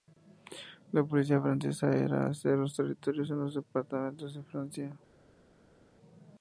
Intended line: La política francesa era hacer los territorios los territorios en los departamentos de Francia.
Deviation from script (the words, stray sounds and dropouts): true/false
true